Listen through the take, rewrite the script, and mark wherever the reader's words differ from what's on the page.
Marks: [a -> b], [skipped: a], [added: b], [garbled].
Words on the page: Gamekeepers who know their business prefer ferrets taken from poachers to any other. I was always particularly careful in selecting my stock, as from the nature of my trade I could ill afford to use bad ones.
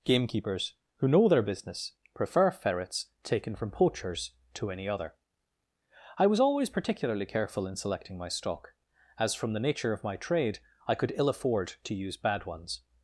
Gamekeepers who know their business prefer ferrets taken from poachers to any other. I was always particularly careful in selecting my stock, as from the nature of my trade I could ill afford to use bad ones.